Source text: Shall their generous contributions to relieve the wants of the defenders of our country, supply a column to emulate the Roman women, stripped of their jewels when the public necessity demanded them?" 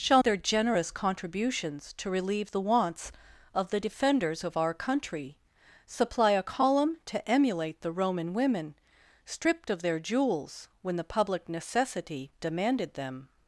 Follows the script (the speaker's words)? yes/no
yes